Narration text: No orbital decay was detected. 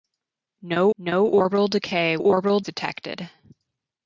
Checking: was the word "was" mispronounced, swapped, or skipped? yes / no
yes